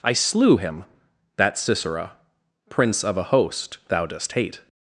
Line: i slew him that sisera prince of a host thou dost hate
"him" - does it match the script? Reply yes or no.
yes